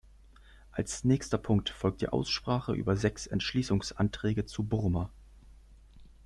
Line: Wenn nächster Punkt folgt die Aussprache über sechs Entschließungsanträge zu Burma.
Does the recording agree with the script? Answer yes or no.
no